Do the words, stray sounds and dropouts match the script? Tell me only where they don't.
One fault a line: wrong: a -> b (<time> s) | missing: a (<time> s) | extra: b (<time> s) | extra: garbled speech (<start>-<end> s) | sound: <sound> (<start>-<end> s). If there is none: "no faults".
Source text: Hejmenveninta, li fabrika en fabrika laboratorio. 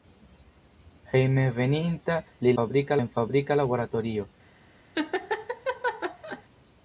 sound: laugh (4.9-6.4 s)